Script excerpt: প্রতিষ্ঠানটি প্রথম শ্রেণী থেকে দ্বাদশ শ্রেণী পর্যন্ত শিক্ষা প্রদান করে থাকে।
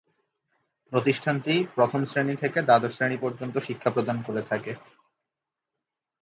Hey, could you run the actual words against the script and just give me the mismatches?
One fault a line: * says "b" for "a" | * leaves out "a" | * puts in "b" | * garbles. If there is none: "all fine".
all fine